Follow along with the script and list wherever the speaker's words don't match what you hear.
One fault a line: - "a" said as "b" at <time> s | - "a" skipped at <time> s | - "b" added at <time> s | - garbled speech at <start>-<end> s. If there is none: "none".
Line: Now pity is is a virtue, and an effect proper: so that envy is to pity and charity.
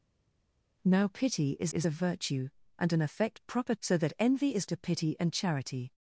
none